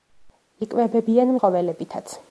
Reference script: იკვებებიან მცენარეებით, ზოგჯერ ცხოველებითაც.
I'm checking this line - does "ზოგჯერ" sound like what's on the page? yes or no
no